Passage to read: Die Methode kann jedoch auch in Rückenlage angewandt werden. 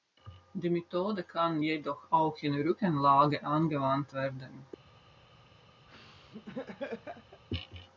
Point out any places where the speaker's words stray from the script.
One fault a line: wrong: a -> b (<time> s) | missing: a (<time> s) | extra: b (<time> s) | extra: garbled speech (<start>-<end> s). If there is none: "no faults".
no faults